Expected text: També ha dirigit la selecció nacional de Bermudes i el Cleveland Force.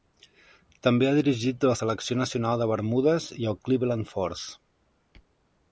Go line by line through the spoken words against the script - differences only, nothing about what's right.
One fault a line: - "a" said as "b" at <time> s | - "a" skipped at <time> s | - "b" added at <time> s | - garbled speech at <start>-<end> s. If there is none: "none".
none